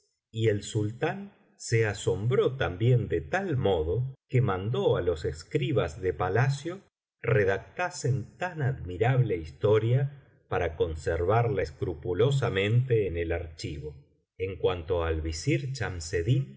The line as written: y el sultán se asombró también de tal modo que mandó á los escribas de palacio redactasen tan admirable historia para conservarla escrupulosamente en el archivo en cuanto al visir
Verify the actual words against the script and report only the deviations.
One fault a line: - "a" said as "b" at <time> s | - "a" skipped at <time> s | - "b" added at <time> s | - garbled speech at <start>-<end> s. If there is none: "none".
none